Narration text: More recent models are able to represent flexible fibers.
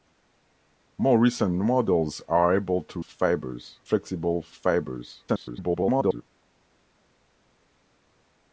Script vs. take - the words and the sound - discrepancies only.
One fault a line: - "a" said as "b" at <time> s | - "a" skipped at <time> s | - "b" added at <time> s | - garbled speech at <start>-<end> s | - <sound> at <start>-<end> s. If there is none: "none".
- "represent" said as "fibers" at 3.0 s
- garbled speech at 5.3-6.2 s